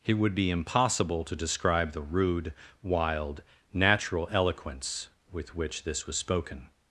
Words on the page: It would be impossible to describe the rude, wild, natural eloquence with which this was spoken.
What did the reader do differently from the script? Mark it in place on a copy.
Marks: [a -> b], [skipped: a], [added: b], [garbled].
It would be impossible to describe the rude, wild, natural eloquence with which this was spoken.